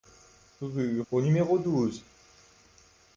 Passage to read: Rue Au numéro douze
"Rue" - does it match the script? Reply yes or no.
yes